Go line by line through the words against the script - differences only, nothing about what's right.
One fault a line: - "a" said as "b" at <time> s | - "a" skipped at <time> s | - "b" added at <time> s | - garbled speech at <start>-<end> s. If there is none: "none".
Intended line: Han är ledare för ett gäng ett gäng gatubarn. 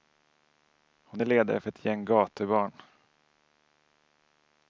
- "Han" said as "Hon" at 1.0 s
- "ett gäng" skipped at 2.0 s